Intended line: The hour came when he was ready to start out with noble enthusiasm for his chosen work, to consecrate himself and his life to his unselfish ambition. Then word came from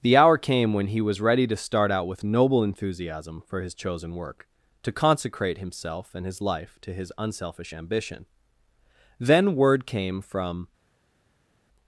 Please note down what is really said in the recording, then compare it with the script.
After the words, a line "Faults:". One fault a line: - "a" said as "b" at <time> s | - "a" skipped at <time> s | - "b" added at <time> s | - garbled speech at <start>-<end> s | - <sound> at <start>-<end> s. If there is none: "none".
The hour came when he was ready to start out with noble enthusiasm for his chosen work, to consecrate himself and his life to his unselfish ambition. Then word came from
Faults:
none